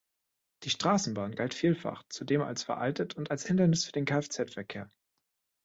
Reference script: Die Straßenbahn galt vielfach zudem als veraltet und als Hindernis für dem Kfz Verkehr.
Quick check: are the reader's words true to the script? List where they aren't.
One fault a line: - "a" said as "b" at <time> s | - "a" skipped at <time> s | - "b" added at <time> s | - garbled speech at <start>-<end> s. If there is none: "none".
- "dem" said as "den" at 3.9 s